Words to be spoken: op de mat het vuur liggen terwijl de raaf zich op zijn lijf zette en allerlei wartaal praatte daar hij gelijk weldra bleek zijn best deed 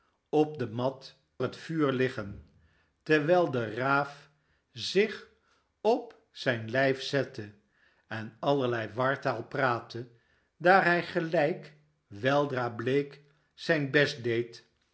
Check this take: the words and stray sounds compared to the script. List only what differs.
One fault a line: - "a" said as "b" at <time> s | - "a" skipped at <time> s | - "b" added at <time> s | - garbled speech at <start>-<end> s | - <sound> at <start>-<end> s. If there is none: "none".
none